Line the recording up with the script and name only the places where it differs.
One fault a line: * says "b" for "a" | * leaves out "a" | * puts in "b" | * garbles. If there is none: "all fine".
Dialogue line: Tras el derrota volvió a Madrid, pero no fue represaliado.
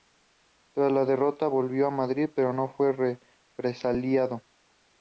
* says "la" for "el"